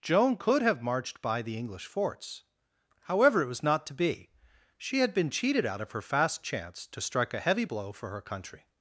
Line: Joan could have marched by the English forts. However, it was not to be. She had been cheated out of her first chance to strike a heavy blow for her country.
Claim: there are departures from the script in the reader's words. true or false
true